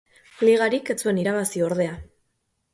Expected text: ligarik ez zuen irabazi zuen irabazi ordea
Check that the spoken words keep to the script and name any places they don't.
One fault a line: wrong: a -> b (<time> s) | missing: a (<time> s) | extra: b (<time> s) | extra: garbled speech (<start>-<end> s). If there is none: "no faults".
missing: zuen irabazi (1.6 s)